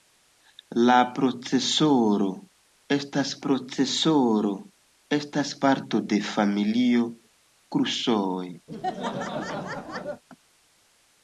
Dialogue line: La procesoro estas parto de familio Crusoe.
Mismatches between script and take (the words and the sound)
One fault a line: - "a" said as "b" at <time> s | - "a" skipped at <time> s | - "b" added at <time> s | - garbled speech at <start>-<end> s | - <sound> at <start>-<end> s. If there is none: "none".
- "procesoro estas" added at 3.4 s
- laugh at 8.7-10.2 s